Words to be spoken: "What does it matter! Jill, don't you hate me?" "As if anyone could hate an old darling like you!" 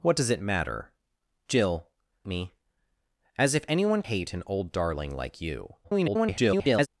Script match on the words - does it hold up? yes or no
no